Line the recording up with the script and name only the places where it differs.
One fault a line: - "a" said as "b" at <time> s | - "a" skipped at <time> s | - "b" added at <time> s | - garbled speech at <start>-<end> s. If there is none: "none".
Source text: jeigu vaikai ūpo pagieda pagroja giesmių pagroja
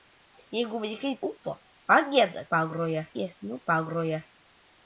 none